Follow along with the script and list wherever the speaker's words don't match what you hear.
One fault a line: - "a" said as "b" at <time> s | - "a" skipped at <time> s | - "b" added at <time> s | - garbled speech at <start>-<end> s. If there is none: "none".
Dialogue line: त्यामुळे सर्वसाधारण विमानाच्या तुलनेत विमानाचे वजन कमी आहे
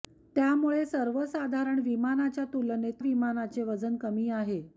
none